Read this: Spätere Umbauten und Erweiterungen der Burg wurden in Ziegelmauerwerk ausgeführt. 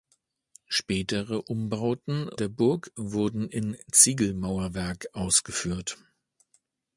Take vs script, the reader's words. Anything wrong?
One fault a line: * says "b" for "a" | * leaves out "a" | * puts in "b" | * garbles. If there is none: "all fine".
* leaves out "und Erweiterungen"